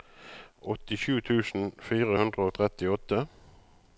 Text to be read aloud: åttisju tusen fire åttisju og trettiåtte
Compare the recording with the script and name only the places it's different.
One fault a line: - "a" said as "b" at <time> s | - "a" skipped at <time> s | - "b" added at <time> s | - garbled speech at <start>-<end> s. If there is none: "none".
- "åttisju" said as "hundre" at 2.2 s